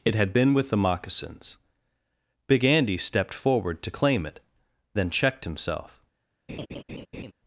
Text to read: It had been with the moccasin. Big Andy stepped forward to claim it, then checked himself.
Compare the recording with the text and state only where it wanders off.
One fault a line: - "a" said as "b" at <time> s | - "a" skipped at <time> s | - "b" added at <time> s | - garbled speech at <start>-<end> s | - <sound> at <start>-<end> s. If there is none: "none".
- "moccasin" said as "moccasins" at 0.8 s
- laugh at 6.5-7.3 s